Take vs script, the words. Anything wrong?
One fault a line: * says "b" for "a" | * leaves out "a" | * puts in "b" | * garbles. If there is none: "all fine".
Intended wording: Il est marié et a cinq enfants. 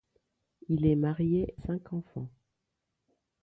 * leaves out "et a"